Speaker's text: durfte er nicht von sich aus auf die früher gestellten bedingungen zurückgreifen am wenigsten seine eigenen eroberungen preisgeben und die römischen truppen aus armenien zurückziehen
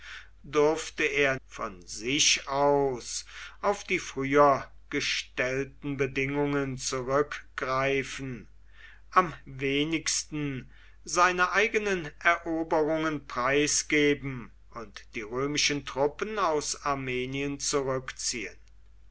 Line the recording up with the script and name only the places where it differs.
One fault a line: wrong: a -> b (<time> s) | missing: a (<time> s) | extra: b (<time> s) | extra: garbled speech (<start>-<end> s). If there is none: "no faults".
missing: nicht (1.4 s)